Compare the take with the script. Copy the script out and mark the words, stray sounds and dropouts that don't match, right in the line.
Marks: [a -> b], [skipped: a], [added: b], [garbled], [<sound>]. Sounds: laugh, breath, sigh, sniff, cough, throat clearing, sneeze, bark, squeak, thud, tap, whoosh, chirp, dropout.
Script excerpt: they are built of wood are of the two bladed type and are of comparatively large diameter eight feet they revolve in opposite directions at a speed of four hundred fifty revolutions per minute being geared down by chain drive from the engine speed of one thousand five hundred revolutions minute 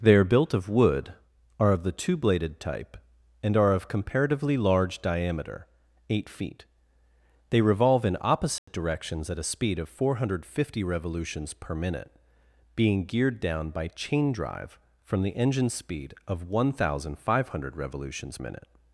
they are built of wood are of the two bladed type and are of comparatively large diameter eight feet they revolve in opposite [dropout] directions at a speed of four hundred fifty revolutions per minute being geared down by chain drive from the engine speed of one thousand five hundred revolutions minute